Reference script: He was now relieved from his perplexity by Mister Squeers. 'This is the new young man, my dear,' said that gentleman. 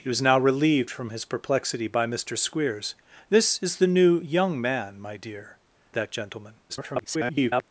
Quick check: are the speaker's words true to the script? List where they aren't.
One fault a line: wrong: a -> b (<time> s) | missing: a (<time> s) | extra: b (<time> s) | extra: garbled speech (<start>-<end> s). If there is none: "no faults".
missing: said (5.6 s)
extra: garbled speech (6.7-7.6 s)